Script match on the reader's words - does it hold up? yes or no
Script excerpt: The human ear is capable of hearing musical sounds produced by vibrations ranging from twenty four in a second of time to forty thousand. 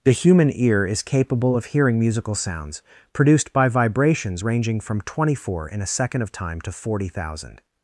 yes